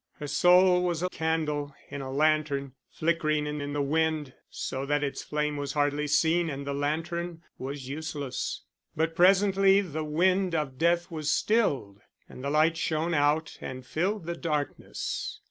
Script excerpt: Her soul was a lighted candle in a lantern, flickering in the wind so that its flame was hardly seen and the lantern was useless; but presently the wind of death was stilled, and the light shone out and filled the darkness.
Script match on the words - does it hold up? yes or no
no